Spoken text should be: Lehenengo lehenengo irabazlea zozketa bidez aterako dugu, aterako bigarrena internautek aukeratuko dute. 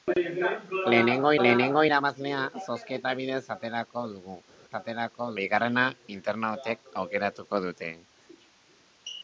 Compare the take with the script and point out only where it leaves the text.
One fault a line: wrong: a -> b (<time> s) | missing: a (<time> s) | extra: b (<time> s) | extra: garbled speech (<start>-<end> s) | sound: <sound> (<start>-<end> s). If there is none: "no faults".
no faults